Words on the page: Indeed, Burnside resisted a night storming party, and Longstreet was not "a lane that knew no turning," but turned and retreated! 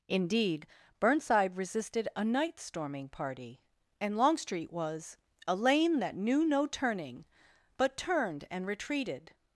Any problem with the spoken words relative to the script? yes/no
yes